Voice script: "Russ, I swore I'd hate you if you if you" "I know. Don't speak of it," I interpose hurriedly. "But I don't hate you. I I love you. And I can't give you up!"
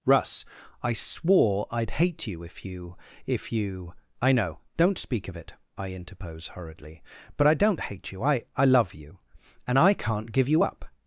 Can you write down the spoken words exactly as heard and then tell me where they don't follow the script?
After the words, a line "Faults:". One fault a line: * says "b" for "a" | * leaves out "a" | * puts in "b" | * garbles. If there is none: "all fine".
"Russ, I swore I'd hate you if you if you" "I know. Don't speak of it," I interpose hurriedly. "But I don't hate you. I I love you. And I can't give you up!"
Faults:
all fine